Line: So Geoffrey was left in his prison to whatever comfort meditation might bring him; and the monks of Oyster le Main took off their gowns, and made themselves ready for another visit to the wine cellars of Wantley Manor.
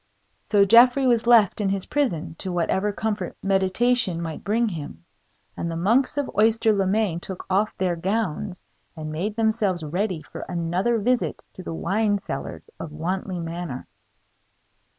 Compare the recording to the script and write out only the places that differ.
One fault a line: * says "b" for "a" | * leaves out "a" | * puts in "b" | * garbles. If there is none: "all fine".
all fine